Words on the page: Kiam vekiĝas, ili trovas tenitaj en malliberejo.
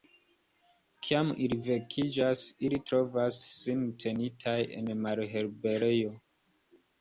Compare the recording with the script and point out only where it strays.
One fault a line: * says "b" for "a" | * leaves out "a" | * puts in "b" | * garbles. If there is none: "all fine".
* puts in "ili"
* puts in "sin"